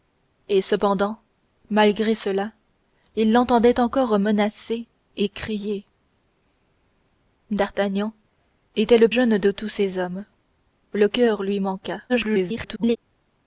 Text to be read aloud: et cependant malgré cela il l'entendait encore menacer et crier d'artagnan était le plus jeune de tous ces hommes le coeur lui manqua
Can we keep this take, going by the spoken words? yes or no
no